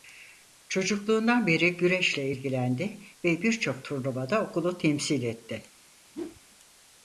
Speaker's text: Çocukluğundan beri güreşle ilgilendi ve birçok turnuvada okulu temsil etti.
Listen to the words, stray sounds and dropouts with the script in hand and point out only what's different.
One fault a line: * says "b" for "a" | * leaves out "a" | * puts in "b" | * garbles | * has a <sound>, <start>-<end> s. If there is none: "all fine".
* has a whoosh, 6.1-6.4 s